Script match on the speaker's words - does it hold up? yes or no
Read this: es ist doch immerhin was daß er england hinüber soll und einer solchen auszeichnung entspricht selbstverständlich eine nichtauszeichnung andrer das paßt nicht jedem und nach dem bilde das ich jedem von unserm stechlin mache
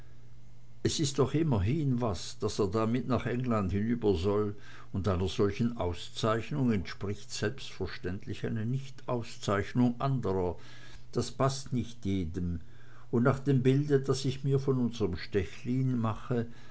no